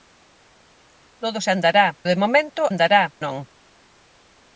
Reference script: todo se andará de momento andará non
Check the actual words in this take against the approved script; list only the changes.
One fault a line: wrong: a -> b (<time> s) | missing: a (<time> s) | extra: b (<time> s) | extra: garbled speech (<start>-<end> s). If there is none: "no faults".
no faults